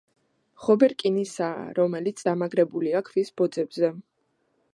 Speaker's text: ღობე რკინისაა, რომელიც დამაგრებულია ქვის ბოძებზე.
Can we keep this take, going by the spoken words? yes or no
yes